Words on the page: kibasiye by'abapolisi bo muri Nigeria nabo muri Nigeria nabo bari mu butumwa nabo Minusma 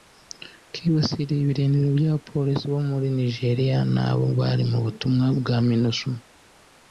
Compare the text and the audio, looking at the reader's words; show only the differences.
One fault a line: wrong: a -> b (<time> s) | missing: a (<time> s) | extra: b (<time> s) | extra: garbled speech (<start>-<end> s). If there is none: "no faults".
extra: ibirindiro (1.4 s)
missing: muri Nigeria nabo (4.2 s)
wrong: nabo -> bwa (5.4 s)